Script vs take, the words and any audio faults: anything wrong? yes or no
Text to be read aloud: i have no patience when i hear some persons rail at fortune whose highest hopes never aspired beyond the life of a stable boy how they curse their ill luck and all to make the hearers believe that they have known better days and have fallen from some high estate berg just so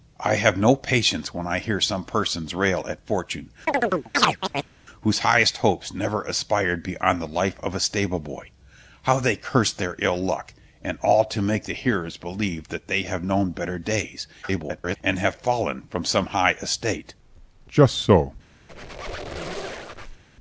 yes